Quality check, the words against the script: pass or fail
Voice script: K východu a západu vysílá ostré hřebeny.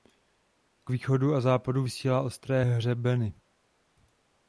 pass